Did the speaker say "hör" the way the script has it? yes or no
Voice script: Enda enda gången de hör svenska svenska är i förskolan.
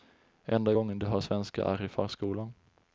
yes